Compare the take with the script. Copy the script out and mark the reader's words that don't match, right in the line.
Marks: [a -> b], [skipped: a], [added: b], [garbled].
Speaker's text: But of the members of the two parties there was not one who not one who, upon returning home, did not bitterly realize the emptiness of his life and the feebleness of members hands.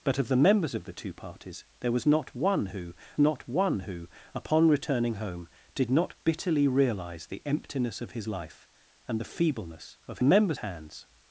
But of the members of the two parties there was not one who not one who, upon returning home, did not bitterly realize the emptiness of his life and the feebleness of members hands.